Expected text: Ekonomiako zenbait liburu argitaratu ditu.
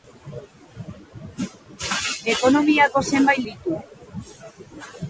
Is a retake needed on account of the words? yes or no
yes